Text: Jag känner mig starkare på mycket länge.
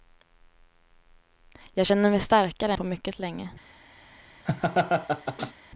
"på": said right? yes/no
yes